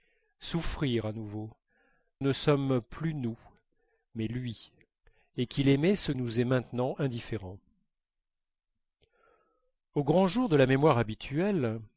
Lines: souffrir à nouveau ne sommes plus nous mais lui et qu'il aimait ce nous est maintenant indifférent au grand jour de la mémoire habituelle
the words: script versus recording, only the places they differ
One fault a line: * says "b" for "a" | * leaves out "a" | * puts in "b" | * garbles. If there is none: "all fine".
all fine